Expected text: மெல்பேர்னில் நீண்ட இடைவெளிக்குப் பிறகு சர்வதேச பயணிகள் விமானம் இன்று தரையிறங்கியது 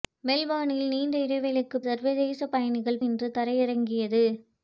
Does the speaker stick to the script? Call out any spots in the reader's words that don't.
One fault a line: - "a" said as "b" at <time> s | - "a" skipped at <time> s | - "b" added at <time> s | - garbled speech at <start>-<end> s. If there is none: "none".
- "பிறகு" skipped at 1.8 s
- "விமானம்" skipped at 3.0 s